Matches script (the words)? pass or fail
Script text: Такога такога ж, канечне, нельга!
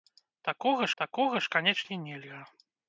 pass